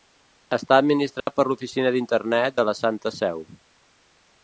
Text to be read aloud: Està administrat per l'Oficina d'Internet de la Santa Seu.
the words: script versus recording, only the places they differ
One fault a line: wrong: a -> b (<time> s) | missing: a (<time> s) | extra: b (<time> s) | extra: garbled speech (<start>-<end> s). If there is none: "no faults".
no faults